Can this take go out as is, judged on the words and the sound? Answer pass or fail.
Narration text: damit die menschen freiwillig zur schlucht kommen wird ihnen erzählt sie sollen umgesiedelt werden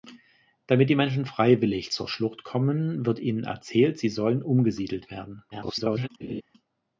fail